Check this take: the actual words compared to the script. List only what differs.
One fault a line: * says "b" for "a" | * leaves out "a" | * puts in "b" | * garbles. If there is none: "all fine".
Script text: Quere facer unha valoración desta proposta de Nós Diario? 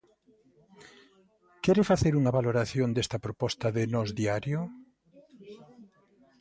all fine